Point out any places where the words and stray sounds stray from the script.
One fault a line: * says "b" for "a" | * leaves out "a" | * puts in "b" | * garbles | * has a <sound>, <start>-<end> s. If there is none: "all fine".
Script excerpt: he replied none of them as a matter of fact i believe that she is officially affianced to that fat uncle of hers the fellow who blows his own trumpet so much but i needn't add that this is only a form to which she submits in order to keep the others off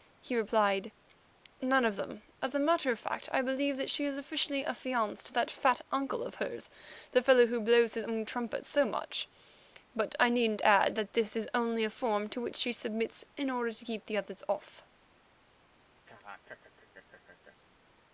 * has a laugh, 16.1-17.6 s